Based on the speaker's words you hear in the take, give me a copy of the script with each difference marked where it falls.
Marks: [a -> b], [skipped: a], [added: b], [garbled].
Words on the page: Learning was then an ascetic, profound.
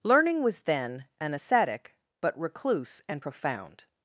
Learning was then an ascetic, [added: but recluse and] profound.